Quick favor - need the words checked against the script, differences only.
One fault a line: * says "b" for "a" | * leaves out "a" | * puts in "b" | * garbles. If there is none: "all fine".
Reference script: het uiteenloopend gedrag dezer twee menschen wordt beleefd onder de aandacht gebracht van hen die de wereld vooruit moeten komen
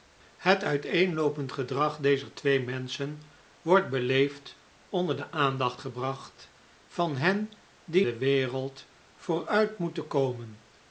all fine